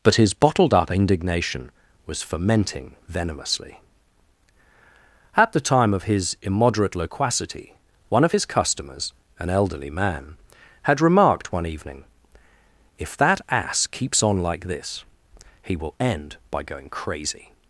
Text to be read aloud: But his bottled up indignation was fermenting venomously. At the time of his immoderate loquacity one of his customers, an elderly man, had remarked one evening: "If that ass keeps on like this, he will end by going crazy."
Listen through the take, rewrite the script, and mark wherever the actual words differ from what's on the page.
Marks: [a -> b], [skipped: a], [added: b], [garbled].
But his bottled up indignation was fermenting venomously. At the time of his immoderate loquacity one of his customers, an elderly man, had remarked one evening: "If that ass keeps on like this, he will end by going crazy."